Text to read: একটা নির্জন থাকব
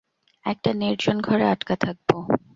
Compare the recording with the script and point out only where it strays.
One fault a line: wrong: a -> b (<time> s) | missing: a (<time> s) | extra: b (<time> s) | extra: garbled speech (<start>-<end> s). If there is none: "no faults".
extra: ঘরে আটকা (1.2 s)